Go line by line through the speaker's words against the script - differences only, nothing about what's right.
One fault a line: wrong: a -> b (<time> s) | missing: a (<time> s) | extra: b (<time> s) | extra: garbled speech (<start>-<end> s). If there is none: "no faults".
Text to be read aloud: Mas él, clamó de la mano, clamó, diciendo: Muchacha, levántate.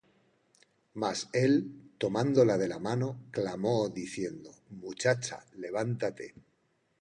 wrong: clamó -> tomándola (2.0 s)